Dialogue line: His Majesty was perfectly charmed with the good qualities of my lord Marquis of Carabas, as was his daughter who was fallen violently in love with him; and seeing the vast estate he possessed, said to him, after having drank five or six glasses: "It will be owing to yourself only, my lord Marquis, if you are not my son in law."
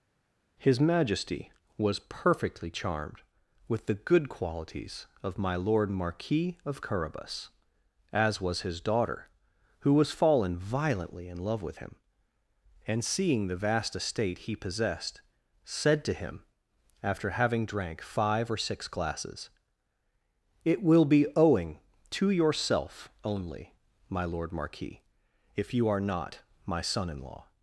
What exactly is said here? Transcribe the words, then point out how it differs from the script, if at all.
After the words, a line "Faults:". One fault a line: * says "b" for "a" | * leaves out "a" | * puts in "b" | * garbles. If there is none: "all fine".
His Majesty was perfectly charmed with the good qualities of my lord Marquis of Carabas, as was his daughter who was fallen violently in love with him; and seeing the vast estate he possessed, said to him, after having drank five or six glasses: "It will be owing to yourself only, my lord Marquis, if you are not my son in law."
Faults:
all fine